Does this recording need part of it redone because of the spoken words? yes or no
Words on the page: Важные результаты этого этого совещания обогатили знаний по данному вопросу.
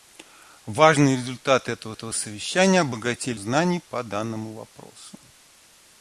no